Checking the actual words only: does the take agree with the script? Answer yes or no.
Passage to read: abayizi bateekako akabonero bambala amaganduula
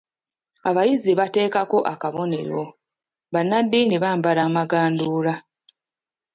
no